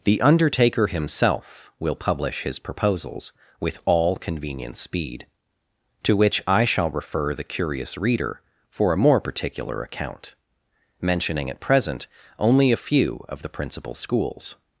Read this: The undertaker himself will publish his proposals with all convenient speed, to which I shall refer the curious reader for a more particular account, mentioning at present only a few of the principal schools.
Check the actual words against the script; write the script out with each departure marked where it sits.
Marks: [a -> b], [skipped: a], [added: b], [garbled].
The undertaker himself will publish his proposals with all convenient speed, to which I shall refer the curious reader for a more particular account, mentioning at present only a few of the principal schools.